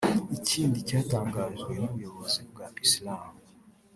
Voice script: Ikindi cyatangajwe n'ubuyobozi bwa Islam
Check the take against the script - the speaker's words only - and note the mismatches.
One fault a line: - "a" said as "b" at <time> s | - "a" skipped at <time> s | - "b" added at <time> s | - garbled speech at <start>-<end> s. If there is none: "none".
none